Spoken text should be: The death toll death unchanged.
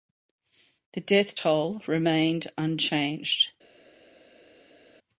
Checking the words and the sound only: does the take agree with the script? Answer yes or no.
no